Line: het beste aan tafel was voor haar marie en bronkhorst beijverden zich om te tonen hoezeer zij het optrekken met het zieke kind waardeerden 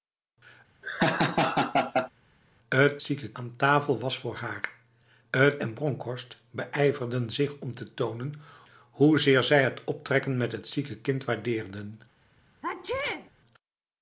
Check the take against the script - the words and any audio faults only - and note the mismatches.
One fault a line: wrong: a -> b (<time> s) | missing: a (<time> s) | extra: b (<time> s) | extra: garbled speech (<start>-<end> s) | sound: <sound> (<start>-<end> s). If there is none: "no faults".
sound: laugh (0.8-2.1 s)
wrong: beste -> zieke (3.0 s)
wrong: marie -> het (5.3 s)
sound: sneeze (12.6-13.3 s)